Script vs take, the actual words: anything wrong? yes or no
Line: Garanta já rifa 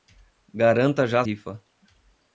no